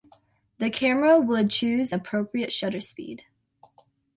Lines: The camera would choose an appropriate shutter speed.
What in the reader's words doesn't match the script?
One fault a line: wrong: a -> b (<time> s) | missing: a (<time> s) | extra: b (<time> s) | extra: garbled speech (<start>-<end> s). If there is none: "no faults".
missing: an (1.9 s)